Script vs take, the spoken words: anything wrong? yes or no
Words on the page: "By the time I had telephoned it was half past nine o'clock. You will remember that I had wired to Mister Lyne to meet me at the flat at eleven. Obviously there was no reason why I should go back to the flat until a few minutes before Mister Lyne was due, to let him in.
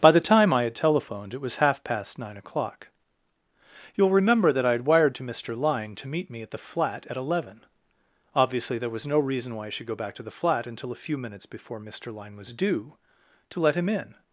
no